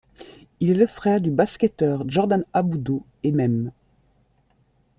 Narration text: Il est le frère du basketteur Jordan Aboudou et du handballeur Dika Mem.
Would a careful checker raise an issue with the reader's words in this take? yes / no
yes